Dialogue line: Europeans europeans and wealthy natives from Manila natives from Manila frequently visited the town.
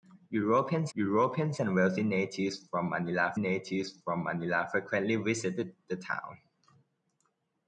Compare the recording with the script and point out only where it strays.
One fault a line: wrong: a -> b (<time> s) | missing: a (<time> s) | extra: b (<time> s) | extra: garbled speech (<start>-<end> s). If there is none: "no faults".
no faults